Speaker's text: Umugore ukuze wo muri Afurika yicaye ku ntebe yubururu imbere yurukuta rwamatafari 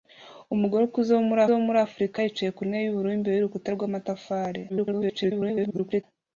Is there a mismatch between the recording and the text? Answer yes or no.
yes